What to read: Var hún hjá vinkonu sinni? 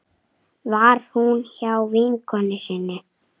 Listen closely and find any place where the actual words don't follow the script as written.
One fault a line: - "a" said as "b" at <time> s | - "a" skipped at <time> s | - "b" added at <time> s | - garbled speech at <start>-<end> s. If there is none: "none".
none